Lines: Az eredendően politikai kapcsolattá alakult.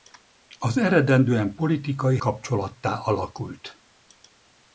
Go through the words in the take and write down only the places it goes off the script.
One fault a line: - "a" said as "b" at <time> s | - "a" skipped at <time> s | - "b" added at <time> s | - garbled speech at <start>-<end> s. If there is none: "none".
none